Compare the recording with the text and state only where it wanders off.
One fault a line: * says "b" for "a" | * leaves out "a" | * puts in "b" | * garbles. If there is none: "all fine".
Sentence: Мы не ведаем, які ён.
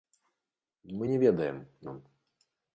* leaves out "які"